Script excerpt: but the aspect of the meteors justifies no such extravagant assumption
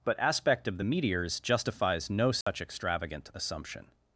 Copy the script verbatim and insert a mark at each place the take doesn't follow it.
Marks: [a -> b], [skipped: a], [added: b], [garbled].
but [skipped: the] aspect of the meteors justifies no such extravagant assumption